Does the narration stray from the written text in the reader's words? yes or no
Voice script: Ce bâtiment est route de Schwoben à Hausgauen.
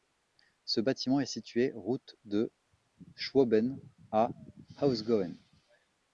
yes